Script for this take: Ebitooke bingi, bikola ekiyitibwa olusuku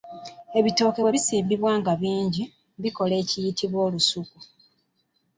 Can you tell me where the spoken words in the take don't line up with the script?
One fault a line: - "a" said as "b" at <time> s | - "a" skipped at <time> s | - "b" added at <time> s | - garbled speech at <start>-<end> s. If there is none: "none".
- "bwe bisimbibwa nga" added at 1.0 s